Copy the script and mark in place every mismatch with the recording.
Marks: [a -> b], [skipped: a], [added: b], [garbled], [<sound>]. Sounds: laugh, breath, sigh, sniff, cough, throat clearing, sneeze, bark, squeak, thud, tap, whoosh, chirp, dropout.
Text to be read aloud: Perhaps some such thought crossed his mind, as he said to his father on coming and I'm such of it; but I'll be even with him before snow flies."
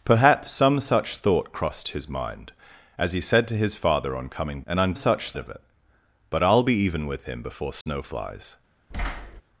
Perhaps some such thought crossed his mind, as he said to his father on coming and I'm such of it; but I'll be even with him before snow [dropout] flies." [thud]